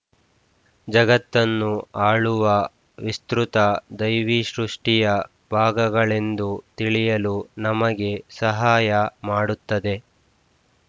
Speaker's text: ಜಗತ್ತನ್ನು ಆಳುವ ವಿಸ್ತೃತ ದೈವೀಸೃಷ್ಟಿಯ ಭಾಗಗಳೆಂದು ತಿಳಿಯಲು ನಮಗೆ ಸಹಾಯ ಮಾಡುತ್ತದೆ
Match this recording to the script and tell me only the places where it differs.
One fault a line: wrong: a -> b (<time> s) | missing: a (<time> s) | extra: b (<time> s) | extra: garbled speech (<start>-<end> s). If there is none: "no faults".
no faults